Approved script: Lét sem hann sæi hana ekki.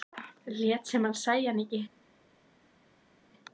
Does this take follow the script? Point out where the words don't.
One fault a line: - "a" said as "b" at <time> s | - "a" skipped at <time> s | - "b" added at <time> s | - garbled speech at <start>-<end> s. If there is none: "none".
none